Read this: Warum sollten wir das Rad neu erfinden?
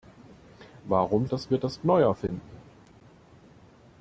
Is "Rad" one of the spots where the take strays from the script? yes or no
yes